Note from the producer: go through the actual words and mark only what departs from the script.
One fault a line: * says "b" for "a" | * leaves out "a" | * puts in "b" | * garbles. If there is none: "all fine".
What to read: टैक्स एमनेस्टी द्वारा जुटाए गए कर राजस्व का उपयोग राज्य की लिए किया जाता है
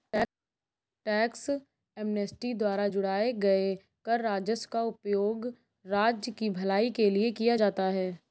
* puts in "भलाई के"